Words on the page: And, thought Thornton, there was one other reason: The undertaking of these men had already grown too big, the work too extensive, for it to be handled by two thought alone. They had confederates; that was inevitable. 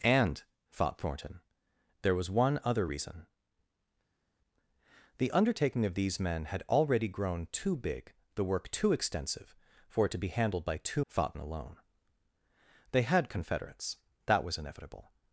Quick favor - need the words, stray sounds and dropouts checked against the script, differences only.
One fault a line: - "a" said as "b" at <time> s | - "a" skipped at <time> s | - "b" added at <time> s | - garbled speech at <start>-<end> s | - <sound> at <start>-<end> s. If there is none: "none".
none